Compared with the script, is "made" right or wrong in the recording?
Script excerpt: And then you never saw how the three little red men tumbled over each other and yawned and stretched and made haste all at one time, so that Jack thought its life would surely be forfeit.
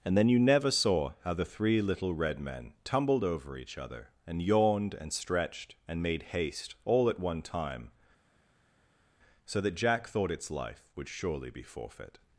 right